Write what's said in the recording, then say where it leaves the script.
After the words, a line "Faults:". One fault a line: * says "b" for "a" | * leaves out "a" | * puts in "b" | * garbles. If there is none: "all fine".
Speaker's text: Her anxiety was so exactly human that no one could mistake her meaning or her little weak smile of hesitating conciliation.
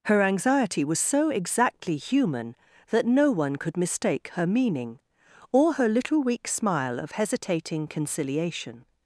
Her anxiety was so exactly human that no one could mistake her meaning or her little weak smile of hesitating conciliation.
Faults:
all fine